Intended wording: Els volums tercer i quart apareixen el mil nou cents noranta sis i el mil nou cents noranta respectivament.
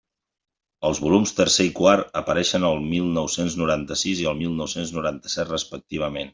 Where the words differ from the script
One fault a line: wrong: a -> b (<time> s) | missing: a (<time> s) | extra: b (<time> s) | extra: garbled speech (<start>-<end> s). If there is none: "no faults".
extra: set (5.4 s)